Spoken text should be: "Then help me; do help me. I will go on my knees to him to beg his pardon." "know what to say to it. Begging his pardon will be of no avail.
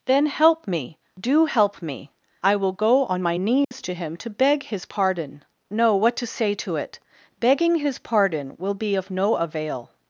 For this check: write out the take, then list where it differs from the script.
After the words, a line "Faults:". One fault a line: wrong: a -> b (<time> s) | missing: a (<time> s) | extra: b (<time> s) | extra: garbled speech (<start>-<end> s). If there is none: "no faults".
"Then help me; do help me. I will go on my knees to him to beg his pardon." "know what to say to it. Begging his pardon will be of no avail.
Faults:
no faults